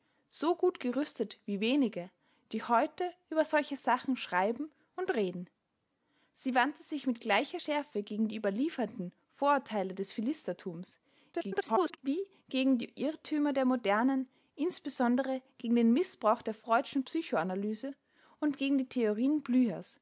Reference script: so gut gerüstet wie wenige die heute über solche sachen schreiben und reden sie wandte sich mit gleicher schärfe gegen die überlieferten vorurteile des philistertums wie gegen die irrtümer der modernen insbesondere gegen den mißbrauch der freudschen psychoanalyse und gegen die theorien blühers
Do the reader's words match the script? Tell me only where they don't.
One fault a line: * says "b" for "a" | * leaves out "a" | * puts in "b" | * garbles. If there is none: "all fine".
* garbles